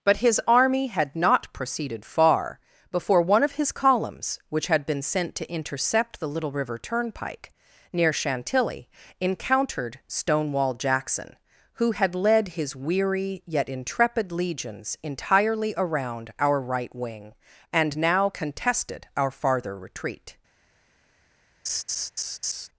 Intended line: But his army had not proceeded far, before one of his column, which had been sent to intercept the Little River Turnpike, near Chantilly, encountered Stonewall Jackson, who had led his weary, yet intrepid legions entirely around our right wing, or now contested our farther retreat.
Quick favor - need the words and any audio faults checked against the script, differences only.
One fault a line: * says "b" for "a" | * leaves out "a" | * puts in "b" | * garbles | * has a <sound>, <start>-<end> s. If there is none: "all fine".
* says "columns" for "column"
* says "and" for "or"
* has a laugh, 21.7-22.7 s